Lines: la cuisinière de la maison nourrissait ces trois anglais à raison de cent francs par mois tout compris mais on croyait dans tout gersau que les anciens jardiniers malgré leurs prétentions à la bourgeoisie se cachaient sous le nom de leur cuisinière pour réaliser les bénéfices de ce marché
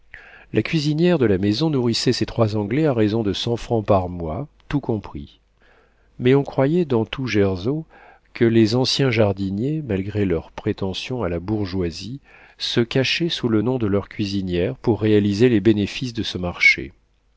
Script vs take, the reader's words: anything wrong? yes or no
no